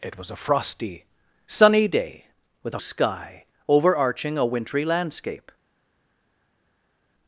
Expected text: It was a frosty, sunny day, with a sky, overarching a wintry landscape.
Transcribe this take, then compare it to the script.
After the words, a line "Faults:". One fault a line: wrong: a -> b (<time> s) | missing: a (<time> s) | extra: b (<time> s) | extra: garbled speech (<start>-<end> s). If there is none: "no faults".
It was a frosty, sunny day, with a sky, overarching a wintry landscape.
Faults:
no faults